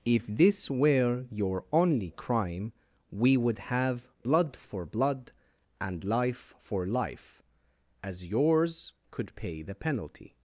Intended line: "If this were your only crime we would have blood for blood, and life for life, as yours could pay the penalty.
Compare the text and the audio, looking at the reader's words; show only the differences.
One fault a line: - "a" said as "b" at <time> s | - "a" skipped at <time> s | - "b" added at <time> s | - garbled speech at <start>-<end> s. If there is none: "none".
none